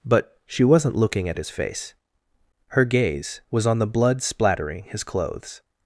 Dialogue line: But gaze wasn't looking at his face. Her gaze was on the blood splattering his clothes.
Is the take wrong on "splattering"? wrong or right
right